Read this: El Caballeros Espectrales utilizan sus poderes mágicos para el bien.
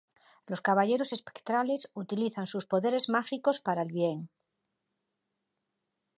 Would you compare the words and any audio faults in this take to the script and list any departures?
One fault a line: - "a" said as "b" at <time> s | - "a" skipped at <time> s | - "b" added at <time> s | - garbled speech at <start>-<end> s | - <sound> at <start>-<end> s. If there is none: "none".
- "El" said as "Los" at 0.5 s